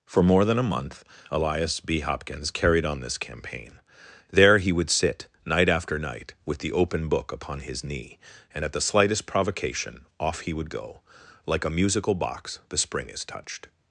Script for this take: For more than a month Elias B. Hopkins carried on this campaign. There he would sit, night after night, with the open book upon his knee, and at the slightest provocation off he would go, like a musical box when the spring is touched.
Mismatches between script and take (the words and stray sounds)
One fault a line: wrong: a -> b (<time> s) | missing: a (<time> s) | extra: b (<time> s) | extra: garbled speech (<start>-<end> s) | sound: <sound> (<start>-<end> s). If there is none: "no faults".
missing: when (12.6 s)